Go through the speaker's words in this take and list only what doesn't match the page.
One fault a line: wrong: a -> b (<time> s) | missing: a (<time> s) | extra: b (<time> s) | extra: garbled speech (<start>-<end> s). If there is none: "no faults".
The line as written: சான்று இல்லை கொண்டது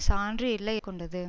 no faults